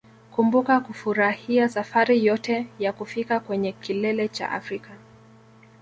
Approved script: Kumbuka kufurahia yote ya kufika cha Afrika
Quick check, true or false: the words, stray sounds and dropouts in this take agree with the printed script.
false